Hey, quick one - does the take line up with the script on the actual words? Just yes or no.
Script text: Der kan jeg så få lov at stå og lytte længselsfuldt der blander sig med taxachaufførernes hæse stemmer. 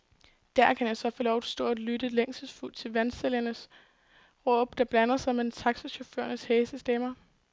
no